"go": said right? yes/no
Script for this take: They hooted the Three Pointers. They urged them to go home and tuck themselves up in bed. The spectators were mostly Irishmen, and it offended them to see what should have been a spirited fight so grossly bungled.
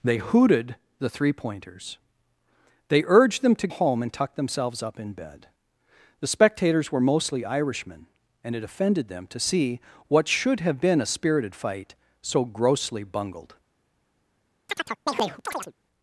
no